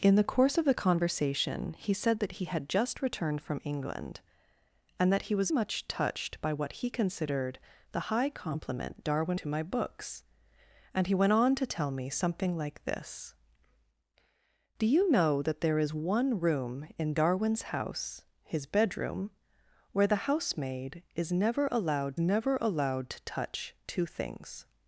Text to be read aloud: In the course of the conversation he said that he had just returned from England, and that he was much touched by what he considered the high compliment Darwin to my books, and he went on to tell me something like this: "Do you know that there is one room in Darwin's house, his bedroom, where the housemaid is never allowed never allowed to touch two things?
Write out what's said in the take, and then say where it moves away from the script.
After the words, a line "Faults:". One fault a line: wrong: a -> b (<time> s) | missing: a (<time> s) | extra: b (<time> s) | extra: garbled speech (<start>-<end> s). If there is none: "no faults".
In the course of the conversation he said that he had just returned from England, and that he was much touched by what he considered the high compliment Darwin to my books, and he went on to tell me something like this: "Do you know that there is one room in Darwin's house, his bedroom, where the housemaid is never allowed never allowed to touch two things?
Faults:
no faults